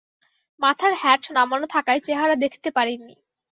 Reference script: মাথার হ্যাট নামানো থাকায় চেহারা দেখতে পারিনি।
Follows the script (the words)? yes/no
yes